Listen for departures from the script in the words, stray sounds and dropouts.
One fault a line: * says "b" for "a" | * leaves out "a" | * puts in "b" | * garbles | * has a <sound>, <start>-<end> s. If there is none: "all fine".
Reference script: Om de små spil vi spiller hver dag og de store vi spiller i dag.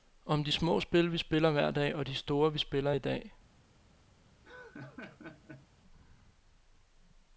* has a laugh, 4.4-5.7 s